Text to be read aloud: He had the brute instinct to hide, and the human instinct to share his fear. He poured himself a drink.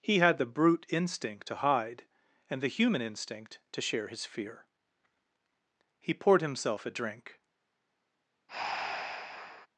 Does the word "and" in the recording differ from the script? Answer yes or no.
no